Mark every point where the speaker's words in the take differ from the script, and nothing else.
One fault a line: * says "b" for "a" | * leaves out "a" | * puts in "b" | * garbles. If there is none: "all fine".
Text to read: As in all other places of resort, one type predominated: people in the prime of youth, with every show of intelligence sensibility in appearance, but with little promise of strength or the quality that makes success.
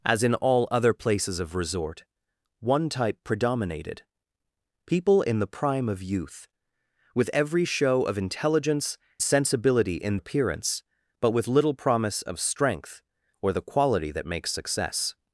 all fine